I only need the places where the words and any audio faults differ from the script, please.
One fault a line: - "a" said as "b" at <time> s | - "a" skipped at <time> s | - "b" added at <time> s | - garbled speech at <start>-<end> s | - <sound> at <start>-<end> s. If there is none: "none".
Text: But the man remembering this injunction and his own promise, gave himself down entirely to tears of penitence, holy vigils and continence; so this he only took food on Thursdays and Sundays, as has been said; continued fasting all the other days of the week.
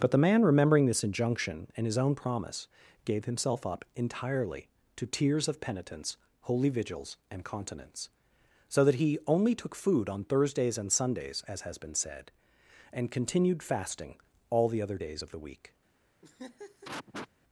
- "down" said as "up" at 3.7 s
- "this" said as "that" at 8.8 s
- "and" added at 12.9 s
- laugh at 16.2-17.3 s